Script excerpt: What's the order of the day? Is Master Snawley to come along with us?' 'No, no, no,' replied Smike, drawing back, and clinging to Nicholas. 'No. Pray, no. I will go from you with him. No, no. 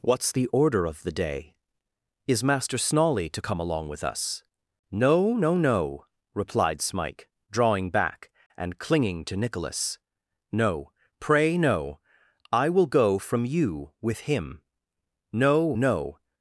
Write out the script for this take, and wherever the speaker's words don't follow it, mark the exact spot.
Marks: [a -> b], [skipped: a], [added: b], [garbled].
What's the order of the day? Is Master Snawley to come along with us?' 'No, no, no,' replied Smike, drawing back, and clinging to Nicholas. 'No. Pray, no. I will go from you with him. No, no.